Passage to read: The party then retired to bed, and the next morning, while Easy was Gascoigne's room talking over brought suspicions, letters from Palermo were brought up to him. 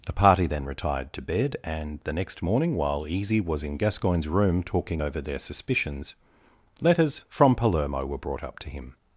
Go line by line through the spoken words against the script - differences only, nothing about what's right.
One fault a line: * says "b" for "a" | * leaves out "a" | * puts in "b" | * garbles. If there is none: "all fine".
* puts in "in"
* says "their" for "brought"